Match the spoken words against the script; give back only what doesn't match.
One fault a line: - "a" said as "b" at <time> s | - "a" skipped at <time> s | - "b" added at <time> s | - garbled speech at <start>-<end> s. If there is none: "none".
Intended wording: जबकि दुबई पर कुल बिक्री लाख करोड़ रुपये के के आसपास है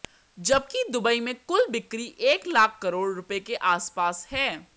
- "पर" said as "में" at 1.2 s
- "एक" added at 2.3 s
- "के" skipped at 3.5 s